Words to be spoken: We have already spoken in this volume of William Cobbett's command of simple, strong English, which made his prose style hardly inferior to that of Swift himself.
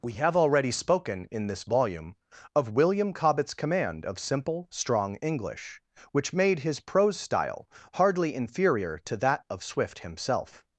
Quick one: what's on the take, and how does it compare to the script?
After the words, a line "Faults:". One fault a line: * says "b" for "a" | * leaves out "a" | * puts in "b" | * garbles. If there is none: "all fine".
We have already spoken in this volume of William Cobbett's command of simple, strong English, which made his prose style hardly inferior to that of Swift himself.
Faults:
all fine